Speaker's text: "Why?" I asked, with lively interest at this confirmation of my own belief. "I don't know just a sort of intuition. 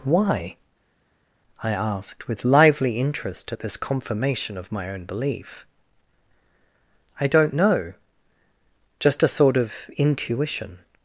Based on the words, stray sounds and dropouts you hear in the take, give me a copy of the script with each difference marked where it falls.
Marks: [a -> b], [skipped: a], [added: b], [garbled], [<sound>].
"Why?" I asked, with lively interest at this confirmation of my own belief. "I don't know just a sort of intuition.